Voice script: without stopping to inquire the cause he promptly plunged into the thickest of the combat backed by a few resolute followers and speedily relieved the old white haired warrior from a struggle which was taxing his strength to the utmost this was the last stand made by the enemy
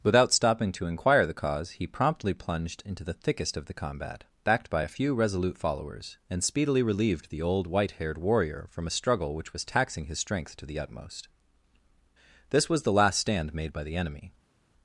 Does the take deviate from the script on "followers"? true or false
false